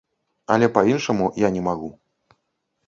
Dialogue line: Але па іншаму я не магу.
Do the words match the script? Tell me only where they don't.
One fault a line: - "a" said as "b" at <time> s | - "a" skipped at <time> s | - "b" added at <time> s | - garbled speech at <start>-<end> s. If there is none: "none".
none